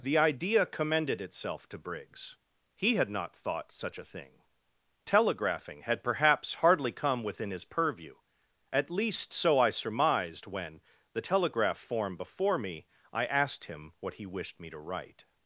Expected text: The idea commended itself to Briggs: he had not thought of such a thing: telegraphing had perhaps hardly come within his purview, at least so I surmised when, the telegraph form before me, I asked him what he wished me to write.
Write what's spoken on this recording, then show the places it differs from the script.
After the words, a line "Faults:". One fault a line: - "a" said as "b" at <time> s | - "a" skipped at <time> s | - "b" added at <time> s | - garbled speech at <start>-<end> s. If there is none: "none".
The idea commended itself to Briggs: he had not thought such a thing: telegraphing had perhaps hardly come within his purview, at least so I surmised when, the telegraph form before me, I asked him what he wished me to write.
Faults:
- "of" skipped at 3.7 s